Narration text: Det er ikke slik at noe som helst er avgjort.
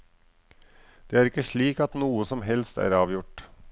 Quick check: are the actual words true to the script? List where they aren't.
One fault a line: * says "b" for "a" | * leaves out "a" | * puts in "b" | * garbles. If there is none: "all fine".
all fine